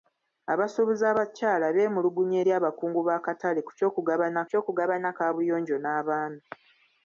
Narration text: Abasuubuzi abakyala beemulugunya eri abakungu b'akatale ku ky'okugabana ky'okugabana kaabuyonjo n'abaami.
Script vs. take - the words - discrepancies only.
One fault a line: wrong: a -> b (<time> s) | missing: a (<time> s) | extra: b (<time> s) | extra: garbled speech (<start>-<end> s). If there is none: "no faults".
no faults